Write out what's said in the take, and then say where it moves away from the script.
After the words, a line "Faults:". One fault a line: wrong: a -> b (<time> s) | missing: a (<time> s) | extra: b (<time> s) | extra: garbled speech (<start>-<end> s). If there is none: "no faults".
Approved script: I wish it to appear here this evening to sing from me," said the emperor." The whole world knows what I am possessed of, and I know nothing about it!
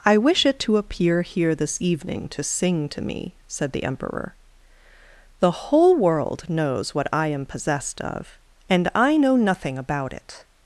I wish it to appear here this evening to sing to me," said the emperor." The whole world knows what I am possessed of, and I know nothing about it!
Faults:
wrong: from -> to (2.9 s)